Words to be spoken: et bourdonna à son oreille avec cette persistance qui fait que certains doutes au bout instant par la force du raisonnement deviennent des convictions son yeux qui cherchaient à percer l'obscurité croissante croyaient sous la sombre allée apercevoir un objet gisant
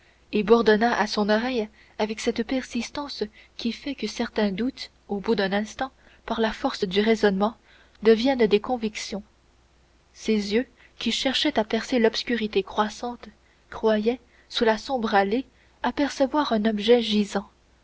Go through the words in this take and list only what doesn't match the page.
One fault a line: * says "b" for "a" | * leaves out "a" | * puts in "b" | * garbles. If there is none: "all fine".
* puts in "d'un"
* says "ses" for "son"